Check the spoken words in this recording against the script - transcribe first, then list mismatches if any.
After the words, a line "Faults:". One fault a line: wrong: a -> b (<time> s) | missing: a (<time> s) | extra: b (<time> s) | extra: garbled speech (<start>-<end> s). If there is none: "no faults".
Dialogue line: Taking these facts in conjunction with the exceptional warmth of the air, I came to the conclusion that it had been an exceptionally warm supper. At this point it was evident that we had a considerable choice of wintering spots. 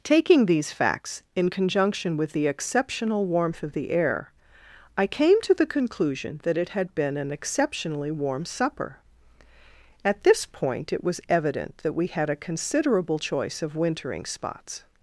Taking these facts in conjunction with the exceptional warmth of the air, I came to the conclusion that it had been an exceptionally warm supper. At this point it was evident that we had a considerable choice of wintering spots.
Faults:
no faults